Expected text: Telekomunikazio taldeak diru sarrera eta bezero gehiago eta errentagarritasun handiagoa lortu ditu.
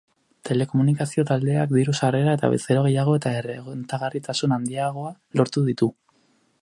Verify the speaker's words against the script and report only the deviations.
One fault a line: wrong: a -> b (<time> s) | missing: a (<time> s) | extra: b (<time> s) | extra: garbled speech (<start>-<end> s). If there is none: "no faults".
no faults